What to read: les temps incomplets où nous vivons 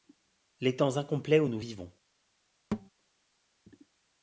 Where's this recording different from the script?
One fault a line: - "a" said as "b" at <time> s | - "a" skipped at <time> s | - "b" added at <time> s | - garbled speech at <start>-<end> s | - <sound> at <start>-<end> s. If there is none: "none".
- thud at 2.7-2.9 s